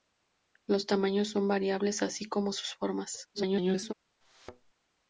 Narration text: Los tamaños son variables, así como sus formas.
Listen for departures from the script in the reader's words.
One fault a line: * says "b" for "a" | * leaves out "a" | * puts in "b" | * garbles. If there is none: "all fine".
* garbles